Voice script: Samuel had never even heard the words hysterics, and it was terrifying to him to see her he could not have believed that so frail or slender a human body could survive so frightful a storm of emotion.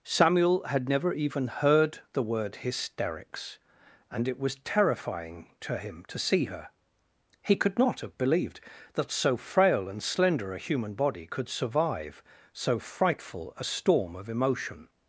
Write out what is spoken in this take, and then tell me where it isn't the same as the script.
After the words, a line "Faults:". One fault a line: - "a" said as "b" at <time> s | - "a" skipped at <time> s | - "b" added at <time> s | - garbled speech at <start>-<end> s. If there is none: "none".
Samuel had never even heard the word hysterics, and it was terrifying to him to see her he could not have believed that so frail and slender a human body could survive so frightful a storm of emotion.
Faults:
- "words" said as "word" at 2.2 s
- "or" said as "and" at 9.9 s